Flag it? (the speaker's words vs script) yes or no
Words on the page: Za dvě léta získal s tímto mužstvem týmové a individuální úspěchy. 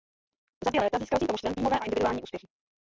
no